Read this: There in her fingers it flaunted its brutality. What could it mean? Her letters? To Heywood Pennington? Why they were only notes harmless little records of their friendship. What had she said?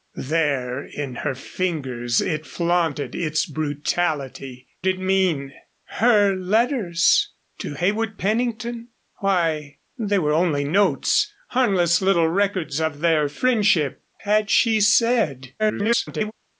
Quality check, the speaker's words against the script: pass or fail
fail